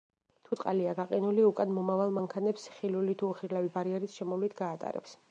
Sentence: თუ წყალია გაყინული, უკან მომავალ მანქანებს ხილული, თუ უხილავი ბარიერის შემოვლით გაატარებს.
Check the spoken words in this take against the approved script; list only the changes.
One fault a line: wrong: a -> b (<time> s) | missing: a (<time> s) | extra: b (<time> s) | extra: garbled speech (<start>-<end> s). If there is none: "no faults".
no faults